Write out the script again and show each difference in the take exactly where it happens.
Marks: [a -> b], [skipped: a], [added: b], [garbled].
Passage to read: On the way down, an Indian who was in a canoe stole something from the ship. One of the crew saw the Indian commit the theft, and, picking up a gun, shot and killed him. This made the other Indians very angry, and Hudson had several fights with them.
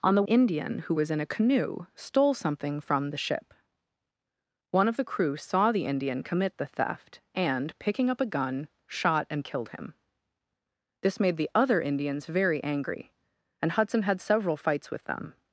On the [skipped: way down, an] Indian who was in a canoe stole something from the ship. One of the crew saw the Indian commit the theft, and, picking up a gun, shot and killed him. This made the other Indians very angry, and Hudson had several fights with them.